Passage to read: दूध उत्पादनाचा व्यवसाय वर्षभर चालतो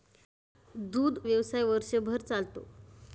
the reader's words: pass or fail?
fail